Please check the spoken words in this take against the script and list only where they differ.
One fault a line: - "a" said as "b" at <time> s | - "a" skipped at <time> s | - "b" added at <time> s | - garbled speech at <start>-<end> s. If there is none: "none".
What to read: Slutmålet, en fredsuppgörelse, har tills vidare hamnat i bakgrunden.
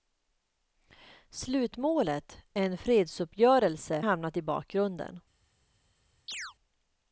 - "har tills vidare" skipped at 4.0 s